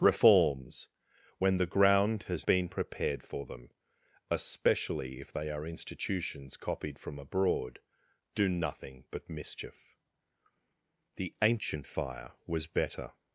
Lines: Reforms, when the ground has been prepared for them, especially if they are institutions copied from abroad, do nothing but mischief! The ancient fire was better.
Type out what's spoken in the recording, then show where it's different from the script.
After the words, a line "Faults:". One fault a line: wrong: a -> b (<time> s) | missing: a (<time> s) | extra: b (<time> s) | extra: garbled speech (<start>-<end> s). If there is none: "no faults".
Reforms, when the ground has been prepared for them, especially if they are institutions copied from abroad, do nothing but mischief! The ancient fire was better.
Faults:
no faults